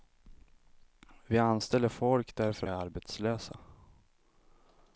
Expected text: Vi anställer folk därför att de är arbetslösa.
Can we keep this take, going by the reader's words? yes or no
no